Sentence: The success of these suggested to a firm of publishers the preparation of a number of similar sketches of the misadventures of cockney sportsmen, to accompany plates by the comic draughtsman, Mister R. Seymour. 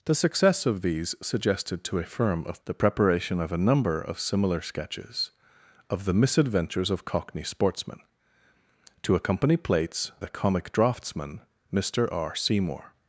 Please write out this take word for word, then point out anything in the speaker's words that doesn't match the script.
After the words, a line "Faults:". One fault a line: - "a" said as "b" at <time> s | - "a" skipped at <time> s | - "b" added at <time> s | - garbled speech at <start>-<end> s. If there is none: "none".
The success of these suggested to a firm of the preparation of a number of similar sketches of the misadventures of cockney sportsmen, to accompany plates the comic draughtsman, Mister R. Seymour.
Faults:
- "publishers" skipped at 2.6 s
- "by" skipped at 10.1 s